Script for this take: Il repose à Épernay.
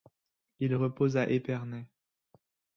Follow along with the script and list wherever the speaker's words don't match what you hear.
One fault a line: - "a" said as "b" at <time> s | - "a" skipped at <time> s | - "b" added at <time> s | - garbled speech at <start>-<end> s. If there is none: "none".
none